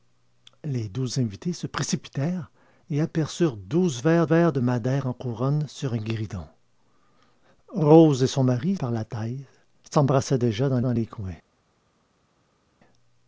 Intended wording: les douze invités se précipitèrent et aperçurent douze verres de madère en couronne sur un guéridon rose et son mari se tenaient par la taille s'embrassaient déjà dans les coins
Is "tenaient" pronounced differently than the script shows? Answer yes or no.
yes